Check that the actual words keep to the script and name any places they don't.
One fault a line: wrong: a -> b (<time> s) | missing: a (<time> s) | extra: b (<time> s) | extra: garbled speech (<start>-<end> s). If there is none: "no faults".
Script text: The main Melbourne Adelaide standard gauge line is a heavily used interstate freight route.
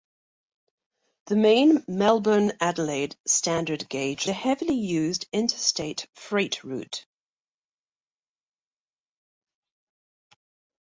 missing: line is (4.3 s)